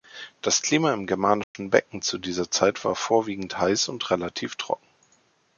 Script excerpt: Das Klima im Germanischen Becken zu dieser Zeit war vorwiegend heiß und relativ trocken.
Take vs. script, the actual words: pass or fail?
pass